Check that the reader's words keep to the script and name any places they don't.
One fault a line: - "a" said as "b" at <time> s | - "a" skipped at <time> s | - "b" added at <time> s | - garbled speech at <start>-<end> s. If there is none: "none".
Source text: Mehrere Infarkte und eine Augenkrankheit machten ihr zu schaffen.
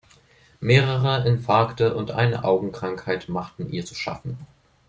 none